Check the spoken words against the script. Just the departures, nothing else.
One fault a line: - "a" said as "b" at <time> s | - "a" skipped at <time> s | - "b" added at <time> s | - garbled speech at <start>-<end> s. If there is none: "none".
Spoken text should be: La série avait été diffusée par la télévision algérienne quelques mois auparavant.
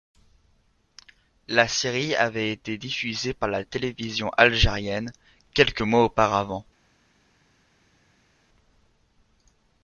none